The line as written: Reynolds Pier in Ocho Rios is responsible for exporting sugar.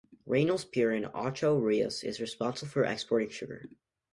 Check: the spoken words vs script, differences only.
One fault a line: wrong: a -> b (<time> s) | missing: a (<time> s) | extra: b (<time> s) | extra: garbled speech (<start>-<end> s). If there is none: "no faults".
no faults